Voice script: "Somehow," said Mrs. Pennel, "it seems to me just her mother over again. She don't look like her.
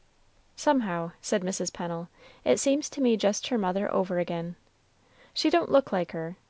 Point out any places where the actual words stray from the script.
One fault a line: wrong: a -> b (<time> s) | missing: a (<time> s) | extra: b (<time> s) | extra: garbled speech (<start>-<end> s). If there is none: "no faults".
no faults